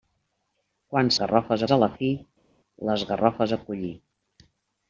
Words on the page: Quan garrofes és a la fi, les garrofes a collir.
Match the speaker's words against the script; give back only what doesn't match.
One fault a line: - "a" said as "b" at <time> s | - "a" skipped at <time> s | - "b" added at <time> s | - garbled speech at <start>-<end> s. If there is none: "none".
none